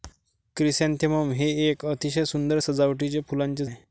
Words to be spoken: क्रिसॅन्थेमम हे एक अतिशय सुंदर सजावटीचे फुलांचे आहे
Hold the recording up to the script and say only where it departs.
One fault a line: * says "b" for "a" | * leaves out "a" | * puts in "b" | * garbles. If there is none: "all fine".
all fine